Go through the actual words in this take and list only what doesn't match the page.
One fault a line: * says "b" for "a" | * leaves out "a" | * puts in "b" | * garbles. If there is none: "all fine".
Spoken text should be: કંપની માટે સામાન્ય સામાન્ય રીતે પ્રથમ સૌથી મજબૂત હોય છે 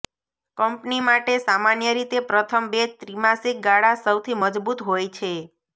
* leaves out "સામાન્ય"
* puts in "બે ત્રિમાસિક ગાળા"